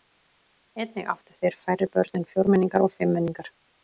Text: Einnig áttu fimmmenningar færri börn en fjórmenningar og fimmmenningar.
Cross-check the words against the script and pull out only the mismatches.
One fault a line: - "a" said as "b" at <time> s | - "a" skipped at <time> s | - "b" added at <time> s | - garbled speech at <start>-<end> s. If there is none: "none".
- "fimmmenningar" said as "þeir" at 1.4 s